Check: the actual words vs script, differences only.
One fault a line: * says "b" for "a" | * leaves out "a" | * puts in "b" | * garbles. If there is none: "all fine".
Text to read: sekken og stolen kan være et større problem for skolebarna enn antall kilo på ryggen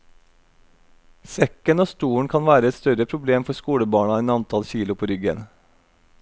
all fine